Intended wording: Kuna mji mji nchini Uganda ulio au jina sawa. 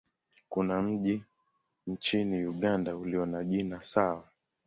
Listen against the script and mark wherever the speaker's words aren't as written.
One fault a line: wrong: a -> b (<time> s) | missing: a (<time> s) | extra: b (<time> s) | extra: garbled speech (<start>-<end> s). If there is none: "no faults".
missing: mji (1.2 s)
wrong: au -> na (3.2 s)